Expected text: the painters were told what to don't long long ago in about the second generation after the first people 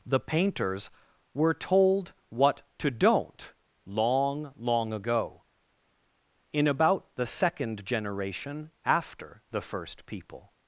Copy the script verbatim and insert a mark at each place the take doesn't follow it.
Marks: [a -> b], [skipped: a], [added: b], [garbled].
the painters were told what to don't long long ago in about the second generation after the first people